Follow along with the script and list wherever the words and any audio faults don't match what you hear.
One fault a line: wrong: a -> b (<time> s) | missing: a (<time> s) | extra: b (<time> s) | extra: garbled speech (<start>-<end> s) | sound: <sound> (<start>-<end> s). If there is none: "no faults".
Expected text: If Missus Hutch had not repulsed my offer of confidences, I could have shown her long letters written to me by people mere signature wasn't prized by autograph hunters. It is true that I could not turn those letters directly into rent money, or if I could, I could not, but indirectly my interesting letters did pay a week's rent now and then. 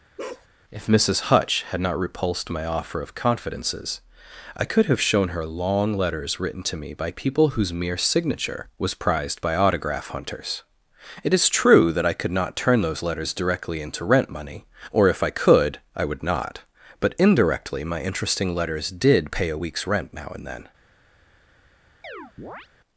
sound: bark (0.2-0.5 s)
extra: whose (7.5 s)
wrong: wasn't -> was (8.8 s)
wrong: could -> would (16.0 s)
sound: chirp (22.0-22.7 s)